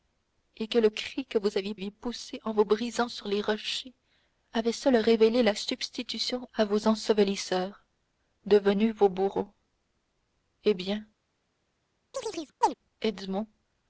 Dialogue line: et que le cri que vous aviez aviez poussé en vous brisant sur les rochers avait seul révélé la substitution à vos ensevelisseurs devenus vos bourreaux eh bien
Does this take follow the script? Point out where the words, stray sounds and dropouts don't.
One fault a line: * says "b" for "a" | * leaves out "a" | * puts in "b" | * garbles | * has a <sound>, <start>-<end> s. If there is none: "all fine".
* has a chirp, 12.1-12.7 s